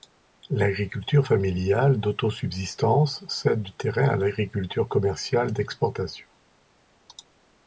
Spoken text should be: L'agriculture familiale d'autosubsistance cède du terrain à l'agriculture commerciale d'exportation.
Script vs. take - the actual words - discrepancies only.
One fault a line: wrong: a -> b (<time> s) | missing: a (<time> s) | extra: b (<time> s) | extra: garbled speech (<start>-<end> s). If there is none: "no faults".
no faults